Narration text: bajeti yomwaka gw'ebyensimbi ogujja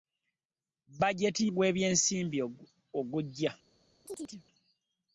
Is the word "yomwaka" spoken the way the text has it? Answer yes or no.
no